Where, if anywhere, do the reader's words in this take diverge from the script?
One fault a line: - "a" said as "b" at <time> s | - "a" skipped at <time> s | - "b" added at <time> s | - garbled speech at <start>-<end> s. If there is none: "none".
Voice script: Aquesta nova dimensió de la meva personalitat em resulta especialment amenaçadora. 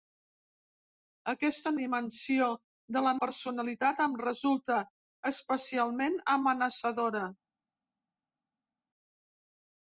- "nova" skipped at 1.7 s
- "meva" skipped at 3.1 s